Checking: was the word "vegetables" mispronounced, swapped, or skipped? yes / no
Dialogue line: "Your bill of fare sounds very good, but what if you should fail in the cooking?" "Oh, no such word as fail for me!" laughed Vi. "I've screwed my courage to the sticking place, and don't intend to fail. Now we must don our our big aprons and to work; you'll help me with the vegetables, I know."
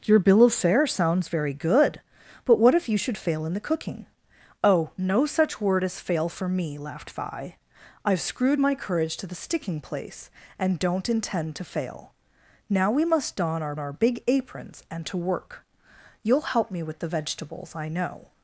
no